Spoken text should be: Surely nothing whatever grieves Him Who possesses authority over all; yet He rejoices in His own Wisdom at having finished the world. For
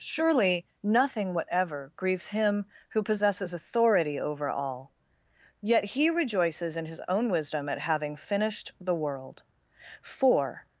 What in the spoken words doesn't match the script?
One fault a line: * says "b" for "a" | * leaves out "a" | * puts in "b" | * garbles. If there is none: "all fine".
all fine